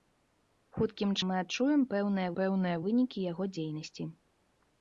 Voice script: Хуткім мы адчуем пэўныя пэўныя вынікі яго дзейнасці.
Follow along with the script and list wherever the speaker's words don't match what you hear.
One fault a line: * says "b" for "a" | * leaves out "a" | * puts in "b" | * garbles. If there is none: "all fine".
all fine